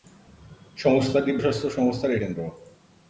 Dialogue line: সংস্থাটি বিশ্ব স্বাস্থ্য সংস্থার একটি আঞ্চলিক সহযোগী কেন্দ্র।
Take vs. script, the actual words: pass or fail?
fail